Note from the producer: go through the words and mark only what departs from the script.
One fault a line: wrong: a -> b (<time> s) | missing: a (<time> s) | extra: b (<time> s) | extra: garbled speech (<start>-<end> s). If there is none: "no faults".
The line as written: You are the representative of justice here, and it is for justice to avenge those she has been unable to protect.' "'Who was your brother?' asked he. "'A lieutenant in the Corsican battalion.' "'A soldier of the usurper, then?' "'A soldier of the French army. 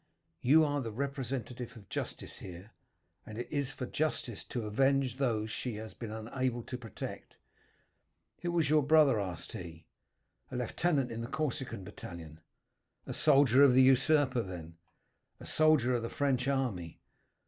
no faults